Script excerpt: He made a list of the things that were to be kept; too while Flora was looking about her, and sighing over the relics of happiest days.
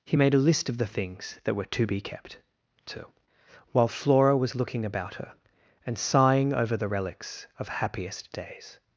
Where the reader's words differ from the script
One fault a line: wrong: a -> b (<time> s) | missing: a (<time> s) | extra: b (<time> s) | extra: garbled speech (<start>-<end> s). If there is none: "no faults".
no faults